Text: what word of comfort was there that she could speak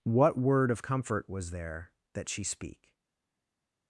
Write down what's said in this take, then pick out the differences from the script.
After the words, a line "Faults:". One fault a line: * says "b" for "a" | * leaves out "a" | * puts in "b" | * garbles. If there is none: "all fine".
what word of comfort was there that she speak
Faults:
* leaves out "could"